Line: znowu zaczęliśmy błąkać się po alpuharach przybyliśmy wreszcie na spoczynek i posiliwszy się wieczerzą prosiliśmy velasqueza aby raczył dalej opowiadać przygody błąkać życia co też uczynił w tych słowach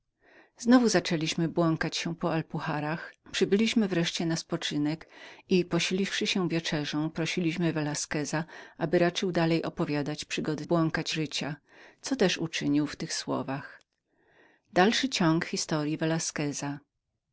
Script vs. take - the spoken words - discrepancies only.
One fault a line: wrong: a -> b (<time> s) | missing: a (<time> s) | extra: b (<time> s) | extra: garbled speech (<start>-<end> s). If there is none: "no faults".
no faults